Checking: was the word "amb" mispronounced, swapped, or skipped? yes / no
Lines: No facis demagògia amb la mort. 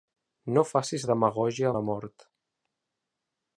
yes